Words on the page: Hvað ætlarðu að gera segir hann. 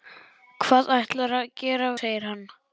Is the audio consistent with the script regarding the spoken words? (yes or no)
yes